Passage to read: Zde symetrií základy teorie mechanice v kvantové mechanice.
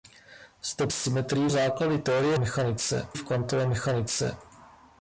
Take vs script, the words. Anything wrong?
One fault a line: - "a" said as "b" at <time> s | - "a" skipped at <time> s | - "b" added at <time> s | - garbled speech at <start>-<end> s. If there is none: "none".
none